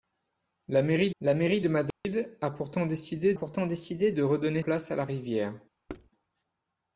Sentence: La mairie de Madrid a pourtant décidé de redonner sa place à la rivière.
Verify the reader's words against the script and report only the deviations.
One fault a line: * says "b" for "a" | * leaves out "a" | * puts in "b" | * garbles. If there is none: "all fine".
* puts in "la mairie"
* puts in "pourtant décidé"
* leaves out "sa"